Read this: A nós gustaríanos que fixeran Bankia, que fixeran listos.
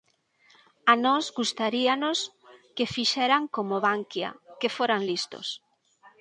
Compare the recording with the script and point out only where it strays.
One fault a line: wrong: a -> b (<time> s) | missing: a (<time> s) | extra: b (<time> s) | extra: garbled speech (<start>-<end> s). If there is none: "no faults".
extra: como (3.5 s)
wrong: fixeran -> foran (4.8 s)